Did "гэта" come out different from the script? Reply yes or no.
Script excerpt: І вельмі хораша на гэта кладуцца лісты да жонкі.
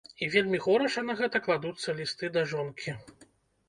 no